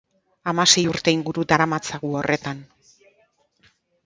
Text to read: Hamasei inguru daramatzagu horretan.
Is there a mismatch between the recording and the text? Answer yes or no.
yes